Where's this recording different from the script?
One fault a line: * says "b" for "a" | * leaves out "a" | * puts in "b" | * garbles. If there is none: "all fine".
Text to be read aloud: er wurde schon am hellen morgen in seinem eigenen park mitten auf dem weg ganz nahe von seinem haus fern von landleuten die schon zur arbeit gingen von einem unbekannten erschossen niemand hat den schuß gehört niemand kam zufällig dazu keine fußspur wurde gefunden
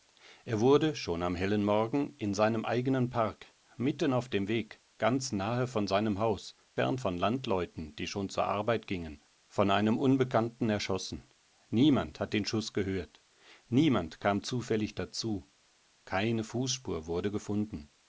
all fine